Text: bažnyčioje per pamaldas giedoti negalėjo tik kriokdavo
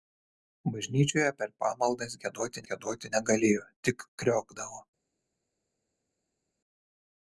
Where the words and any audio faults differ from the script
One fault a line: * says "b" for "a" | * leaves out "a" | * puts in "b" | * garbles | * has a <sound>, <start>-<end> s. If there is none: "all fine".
* puts in "giedoti"